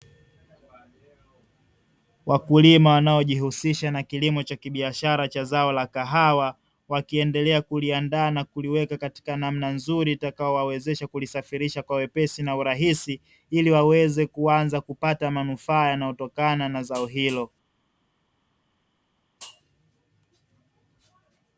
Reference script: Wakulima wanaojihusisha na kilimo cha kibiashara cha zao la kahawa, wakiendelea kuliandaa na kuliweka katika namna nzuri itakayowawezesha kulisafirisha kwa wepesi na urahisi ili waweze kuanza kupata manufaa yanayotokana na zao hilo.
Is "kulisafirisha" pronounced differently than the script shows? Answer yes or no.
no